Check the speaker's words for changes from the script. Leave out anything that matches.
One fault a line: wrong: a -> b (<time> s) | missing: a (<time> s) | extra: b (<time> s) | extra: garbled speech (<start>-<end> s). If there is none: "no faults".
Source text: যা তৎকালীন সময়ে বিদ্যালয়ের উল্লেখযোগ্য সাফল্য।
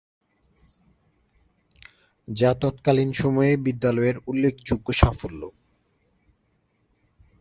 no faults